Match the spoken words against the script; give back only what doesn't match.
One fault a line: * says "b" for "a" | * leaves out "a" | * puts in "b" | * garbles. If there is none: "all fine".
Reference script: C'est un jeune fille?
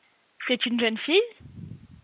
* says "une" for "un"